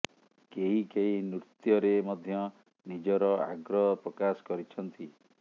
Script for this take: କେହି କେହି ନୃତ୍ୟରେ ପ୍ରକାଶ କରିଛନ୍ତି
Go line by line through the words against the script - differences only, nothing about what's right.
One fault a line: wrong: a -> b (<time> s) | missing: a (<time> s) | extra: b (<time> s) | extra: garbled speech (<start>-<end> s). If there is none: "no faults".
extra: ମଧ୍ୟ ନିଜର ଆଗ୍ରହ (2.1 s)